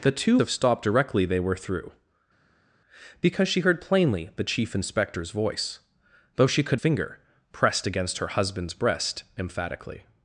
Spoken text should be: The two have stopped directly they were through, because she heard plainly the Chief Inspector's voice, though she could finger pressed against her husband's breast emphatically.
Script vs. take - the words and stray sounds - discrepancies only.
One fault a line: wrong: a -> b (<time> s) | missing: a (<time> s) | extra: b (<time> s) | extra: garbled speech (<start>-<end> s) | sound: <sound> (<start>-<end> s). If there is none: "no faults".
no faults